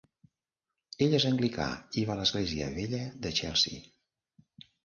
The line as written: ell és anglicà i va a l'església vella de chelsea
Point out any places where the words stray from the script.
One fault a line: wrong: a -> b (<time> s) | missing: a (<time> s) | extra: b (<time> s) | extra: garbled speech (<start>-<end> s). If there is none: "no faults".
no faults